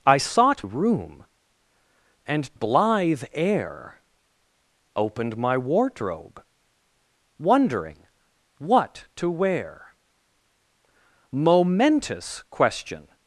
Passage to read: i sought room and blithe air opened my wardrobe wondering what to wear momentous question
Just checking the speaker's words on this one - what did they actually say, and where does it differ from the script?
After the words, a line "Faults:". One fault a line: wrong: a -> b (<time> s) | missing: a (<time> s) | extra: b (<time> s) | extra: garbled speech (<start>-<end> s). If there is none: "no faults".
i sought room and blithe air opened my wardrobe wondering what to wear momentous question
Faults:
no faults